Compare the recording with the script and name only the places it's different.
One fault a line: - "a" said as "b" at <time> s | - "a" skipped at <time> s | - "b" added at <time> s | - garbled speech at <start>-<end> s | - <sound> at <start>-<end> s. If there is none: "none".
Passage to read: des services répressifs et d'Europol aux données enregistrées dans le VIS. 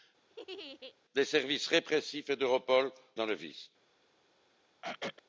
- laugh at 0.3-1.0 s
- "aux données enregistrées" skipped at 2.9 s
- throat clearing at 4.8-5.2 s